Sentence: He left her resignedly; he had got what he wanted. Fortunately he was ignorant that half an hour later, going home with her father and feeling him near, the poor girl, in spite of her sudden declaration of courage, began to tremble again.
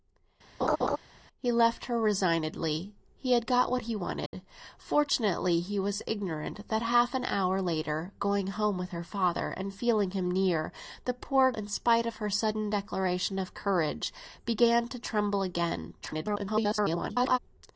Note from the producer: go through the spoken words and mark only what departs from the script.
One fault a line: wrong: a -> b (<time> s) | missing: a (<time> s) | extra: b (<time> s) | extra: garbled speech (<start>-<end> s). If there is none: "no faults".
missing: girl (11.5 s)
extra: garbled speech (16.0-17.4 s)